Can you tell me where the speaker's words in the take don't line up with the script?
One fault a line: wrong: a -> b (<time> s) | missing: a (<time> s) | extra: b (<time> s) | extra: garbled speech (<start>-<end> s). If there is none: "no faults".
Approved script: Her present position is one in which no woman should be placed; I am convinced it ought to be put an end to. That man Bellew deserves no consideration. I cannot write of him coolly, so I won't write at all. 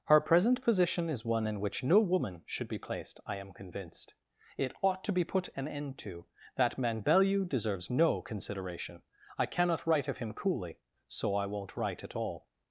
no faults